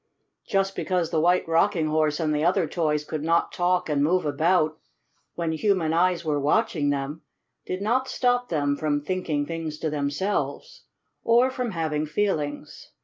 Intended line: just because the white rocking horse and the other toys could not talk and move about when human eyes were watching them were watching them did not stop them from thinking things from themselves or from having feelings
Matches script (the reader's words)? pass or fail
fail